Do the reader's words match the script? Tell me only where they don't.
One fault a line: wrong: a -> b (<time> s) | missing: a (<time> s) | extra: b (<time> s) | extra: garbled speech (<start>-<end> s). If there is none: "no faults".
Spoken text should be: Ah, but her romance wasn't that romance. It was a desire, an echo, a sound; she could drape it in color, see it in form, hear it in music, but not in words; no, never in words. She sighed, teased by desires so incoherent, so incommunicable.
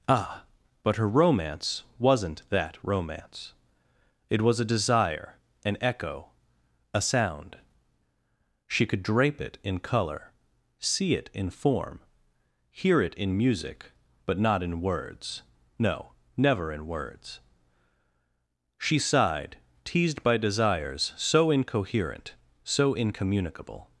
no faults